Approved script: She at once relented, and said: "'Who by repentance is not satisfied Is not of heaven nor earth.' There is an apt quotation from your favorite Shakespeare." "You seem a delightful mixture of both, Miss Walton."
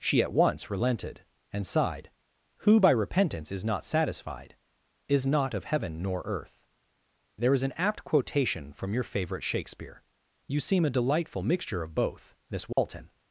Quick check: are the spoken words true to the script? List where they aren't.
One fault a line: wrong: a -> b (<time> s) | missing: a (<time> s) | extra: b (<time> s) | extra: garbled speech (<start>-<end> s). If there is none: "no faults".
wrong: said -> sighed (1.7 s)